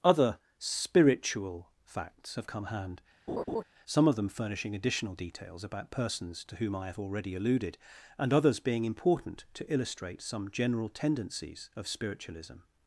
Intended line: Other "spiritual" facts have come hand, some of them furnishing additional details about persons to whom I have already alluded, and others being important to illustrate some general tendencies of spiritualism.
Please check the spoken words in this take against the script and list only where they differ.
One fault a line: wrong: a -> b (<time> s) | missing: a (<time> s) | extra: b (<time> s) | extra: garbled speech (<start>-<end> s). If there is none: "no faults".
no faults